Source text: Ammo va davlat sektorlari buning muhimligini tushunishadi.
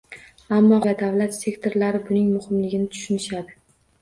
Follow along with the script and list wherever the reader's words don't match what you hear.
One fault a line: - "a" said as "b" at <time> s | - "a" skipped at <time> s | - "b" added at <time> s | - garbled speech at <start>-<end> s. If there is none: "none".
none